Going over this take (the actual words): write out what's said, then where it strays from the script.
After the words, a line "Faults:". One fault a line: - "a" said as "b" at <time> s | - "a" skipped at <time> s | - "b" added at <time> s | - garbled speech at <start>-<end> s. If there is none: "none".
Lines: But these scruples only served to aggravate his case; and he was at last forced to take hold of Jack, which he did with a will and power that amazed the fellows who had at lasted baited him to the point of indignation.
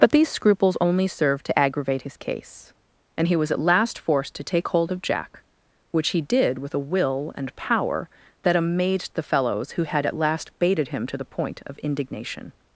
But these scruples only served to aggravate his case; and he was at last forced to take hold of Jack, which he did with a will and power that amazed the fellows who had at last baited him to the point of indignation.
Faults:
- "lasted" said as "last" at 10.2 s